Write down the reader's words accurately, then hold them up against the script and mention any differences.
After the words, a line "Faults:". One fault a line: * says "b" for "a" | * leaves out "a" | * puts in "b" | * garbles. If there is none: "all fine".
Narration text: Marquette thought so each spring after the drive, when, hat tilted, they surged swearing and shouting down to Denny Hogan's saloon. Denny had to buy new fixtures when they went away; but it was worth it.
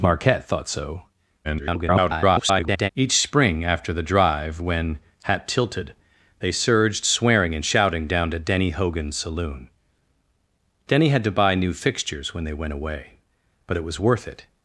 Marquette thought so [garbled] each spring after the drive, when, hat tilted, they surged swearing and shouting down to Denny Hogan's saloon. Denny had to buy new fixtures when they went away; but it was worth it.
Faults:
* garbles